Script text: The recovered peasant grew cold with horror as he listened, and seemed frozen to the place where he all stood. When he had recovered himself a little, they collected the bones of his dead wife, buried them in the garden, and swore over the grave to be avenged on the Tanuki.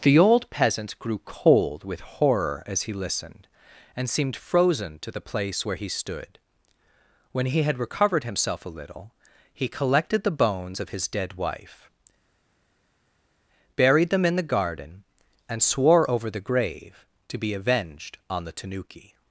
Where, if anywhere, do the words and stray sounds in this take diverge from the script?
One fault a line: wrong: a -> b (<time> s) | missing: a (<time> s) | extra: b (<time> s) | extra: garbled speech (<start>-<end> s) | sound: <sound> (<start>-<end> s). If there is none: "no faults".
wrong: recovered -> old (0.2 s)
missing: all (5.9 s)
wrong: they -> he (9.5 s)